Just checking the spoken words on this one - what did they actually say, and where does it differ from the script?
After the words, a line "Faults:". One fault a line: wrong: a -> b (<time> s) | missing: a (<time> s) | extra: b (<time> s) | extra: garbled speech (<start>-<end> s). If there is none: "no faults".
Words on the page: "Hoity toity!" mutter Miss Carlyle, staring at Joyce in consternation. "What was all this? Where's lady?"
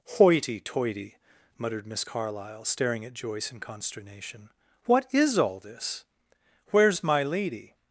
"Hoity toity!" muttered Miss Carlyle, staring at Joyce in consternation. "What is all this? Where's my lady?"
Faults:
wrong: mutter -> muttered (1.6 s)
wrong: was -> is (5.1 s)
extra: my (7.0 s)